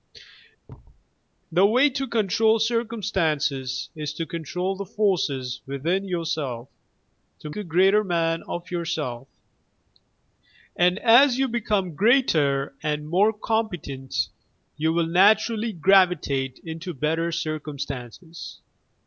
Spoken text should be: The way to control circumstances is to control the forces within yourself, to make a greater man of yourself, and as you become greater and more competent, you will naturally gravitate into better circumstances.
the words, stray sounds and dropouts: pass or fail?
fail